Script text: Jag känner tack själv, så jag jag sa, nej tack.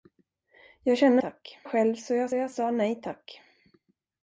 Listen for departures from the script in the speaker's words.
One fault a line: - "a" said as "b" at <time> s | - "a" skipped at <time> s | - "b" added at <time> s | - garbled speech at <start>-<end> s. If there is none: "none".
none